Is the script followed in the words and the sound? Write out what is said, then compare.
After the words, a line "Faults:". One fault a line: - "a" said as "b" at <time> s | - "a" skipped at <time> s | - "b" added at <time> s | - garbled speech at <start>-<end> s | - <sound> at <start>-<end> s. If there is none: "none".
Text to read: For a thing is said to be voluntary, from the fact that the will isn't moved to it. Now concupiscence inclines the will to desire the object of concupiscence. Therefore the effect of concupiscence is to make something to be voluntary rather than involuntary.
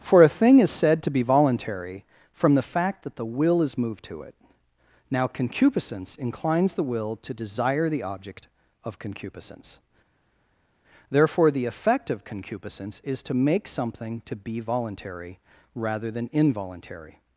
For a thing is said to be voluntary, from the fact that the will is moved to it. Now concupiscence inclines the will to desire the object of concupiscence. Therefore the effect of concupiscence is to make something to be voluntary rather than involuntary.
Faults:
- "isn't" said as "is" at 3.6 s